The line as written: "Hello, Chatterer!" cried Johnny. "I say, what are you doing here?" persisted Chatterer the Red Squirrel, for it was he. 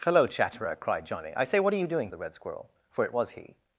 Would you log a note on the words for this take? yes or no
yes